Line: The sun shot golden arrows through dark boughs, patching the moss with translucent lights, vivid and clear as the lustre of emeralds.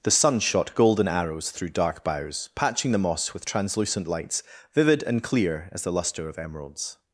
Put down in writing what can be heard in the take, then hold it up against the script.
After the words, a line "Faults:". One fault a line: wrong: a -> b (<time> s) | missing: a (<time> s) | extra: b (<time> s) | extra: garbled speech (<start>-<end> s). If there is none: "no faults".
The sun shot golden arrows through dark boughs, patching the moss with translucent lights, vivid and clear as the lustre of emeralds.
Faults:
no faults